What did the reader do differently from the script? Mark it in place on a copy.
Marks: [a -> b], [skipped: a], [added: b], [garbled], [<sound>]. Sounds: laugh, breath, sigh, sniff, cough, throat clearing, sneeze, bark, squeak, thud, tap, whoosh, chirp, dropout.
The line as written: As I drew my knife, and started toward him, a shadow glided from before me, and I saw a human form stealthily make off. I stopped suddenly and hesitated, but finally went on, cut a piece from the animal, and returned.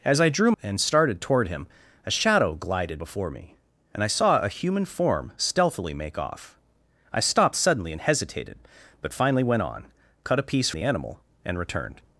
As I drew [skipped: my knife,] and started toward him, a shadow glided [skipped: from] before me, and I saw a human form stealthily make off. I stopped suddenly and hesitated, but finally went on, cut a piece [skipped: from] the animal, and returned.